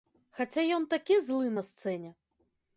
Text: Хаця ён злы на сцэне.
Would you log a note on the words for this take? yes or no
yes